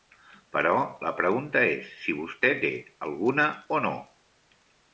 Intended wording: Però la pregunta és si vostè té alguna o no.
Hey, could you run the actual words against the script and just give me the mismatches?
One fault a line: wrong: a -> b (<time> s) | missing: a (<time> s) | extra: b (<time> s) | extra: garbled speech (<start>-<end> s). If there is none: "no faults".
no faults